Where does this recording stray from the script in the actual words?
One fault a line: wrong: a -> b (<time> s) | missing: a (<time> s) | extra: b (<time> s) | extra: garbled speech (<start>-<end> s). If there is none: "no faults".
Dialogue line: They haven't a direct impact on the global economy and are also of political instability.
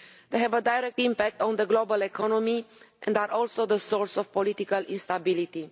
wrong: haven't -> have (0.4 s)
extra: the source (3.6 s)